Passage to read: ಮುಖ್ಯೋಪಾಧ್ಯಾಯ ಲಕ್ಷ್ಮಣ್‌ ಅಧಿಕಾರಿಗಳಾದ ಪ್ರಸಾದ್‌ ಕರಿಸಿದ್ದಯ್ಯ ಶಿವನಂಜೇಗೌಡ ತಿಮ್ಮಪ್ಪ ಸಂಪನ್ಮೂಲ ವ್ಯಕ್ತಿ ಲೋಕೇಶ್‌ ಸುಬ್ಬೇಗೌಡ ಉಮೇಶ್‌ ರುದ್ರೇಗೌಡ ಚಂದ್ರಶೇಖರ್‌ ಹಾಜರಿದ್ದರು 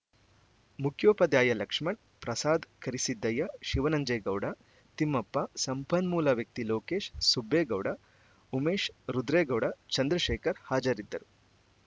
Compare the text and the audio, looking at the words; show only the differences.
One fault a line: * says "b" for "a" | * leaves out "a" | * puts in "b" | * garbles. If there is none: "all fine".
* leaves out "ಅಧಿಕಾರಿಗಳಾದ"